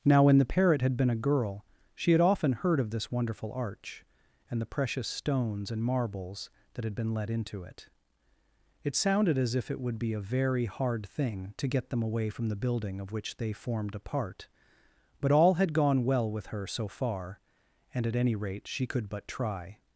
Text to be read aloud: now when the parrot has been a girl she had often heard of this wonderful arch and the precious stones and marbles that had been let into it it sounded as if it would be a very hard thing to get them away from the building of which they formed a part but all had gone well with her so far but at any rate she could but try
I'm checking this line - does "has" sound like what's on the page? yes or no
no